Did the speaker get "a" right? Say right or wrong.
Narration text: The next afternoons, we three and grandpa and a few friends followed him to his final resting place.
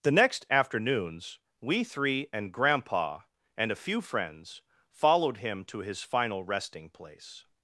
right